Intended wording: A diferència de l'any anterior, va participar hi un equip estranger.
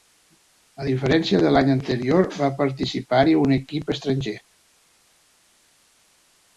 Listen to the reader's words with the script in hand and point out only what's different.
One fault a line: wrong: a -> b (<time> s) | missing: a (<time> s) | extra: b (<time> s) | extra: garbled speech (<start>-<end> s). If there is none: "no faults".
no faults